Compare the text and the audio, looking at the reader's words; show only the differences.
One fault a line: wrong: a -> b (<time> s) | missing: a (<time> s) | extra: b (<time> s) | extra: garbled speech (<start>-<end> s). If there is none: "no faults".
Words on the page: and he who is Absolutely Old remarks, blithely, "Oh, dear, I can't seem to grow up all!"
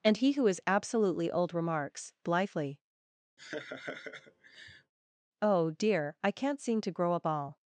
no faults